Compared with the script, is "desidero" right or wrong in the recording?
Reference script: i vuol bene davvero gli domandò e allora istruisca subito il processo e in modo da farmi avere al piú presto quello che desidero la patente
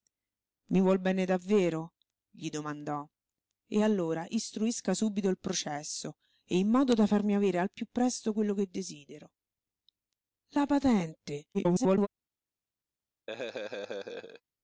right